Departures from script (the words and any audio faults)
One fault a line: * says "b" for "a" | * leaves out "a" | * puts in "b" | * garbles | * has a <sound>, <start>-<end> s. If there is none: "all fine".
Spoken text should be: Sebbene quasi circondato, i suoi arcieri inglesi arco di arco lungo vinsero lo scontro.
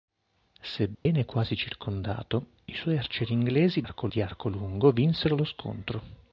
* has a dropout, 0.9-1.1 s